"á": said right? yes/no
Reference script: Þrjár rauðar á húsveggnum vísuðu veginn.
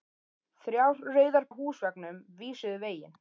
yes